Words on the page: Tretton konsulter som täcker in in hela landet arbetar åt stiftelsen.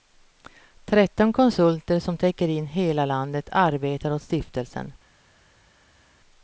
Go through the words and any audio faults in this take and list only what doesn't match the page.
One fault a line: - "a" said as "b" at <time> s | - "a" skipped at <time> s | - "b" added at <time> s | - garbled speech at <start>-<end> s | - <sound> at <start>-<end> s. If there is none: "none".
- "in" skipped at 2.7 s